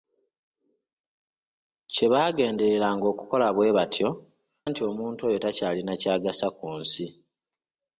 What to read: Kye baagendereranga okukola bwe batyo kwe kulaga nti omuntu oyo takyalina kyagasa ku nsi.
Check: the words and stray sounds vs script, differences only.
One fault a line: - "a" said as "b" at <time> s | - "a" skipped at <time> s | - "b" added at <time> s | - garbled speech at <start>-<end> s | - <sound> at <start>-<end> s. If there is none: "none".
- "kwe kulaga" skipped at 4.1 s